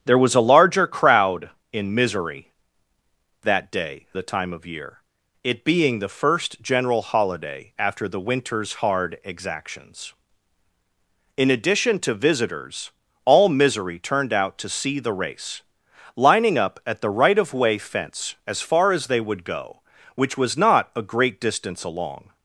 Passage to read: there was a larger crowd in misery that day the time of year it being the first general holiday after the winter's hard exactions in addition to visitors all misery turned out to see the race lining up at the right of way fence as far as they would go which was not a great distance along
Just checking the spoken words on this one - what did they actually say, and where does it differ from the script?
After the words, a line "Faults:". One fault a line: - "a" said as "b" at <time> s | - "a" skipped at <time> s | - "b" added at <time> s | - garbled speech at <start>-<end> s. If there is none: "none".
there was a larger crowd in misery that day the time of year it being the first general holiday after the winter's hard exactions in addition to visitors all misery turned out to see the race lining up at the right of way fence as far as they would go which was not a great distance along
Faults:
none